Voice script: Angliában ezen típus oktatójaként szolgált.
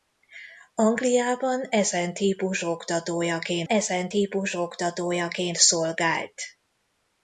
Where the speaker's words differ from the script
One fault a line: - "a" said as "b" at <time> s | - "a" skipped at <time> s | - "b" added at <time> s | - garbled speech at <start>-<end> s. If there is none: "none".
- "ezen típus oktatójaként" added at 3.7 s